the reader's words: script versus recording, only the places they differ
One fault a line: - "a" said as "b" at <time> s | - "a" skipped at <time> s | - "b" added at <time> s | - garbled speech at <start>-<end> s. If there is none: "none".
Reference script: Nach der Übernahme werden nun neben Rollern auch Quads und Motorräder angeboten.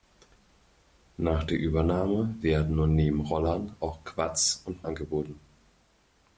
- "Motorräder" skipped at 4.9 s